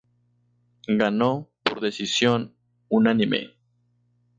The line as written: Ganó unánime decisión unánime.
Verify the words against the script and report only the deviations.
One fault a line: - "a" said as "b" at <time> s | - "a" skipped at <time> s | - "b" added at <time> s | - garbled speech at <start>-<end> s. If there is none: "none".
- "unánime" said as "por" at 1.6 s